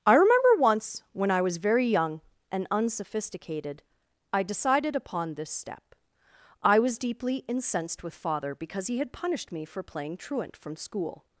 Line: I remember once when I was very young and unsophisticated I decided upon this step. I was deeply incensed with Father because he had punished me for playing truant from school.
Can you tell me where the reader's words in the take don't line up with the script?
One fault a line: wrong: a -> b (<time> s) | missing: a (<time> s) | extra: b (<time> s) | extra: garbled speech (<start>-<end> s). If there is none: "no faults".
no faults